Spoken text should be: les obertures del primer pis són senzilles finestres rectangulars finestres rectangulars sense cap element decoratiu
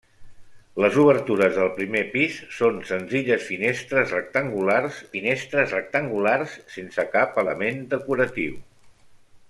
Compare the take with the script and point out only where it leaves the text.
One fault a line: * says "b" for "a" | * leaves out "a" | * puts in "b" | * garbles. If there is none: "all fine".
all fine